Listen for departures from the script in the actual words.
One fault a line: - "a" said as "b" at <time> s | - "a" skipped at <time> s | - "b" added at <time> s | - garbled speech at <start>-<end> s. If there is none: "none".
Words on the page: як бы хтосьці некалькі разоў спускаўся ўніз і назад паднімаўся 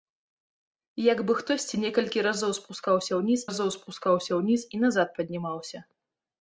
- "разоў спускаўся ўніз" added at 3.5 s